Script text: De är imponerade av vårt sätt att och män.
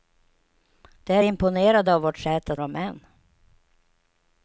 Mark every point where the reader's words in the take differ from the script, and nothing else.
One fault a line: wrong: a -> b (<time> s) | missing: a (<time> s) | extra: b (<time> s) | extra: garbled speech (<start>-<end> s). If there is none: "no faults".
no faults